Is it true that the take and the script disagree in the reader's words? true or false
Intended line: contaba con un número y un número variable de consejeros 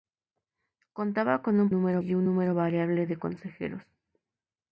false